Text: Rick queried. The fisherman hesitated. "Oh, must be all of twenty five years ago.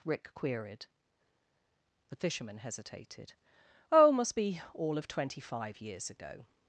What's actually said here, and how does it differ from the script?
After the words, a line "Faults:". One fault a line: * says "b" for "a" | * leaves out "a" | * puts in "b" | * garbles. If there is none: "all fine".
Rick queried. The fisherman hesitated. "Oh, must be all of twenty five years ago.
Faults:
all fine